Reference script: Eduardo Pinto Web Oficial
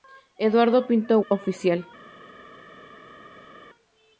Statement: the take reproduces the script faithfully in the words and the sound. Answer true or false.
false